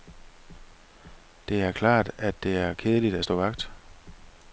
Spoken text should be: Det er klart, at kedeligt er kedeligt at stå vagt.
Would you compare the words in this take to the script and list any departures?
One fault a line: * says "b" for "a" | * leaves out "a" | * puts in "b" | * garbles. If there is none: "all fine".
* says "det" for "kedeligt"